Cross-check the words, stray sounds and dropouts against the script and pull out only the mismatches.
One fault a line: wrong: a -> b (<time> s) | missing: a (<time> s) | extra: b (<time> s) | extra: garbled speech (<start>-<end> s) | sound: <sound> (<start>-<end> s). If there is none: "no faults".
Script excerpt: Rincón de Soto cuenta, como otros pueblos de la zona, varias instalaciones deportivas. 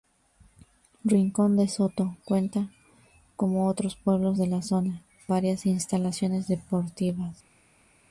no faults